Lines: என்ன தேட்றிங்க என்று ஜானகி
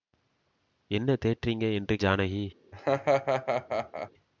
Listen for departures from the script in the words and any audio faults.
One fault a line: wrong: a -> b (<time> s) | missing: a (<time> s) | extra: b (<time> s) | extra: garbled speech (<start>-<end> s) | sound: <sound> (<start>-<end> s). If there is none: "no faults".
sound: laugh (2.7-4.1 s)